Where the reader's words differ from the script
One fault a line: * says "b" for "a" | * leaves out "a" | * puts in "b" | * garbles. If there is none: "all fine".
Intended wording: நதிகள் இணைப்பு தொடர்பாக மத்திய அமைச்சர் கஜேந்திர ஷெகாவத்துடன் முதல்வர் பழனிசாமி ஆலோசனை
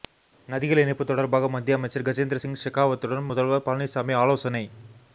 * puts in "சிங்"